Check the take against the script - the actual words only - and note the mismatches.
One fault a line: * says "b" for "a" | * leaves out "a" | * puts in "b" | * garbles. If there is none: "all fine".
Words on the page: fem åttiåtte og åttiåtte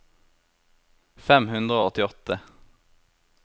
* says "hundre" for "åttiåtte"